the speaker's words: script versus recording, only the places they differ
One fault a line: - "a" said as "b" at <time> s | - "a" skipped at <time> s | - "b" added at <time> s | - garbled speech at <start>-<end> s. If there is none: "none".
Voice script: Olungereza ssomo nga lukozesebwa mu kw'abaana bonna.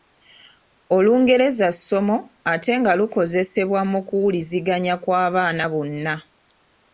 - "ate" added at 2.5 s
- "kuwuliziganya" added at 4.1 s